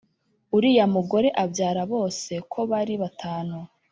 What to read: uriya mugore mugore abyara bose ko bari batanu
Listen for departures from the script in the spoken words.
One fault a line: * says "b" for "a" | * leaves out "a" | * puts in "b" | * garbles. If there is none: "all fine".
* leaves out "mugore"